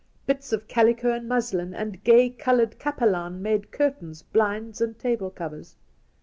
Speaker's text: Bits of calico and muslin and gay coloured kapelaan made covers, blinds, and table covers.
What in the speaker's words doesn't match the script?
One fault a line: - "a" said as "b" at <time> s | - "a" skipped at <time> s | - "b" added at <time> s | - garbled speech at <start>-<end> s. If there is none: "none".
- "covers" said as "curtains" at 3.7 s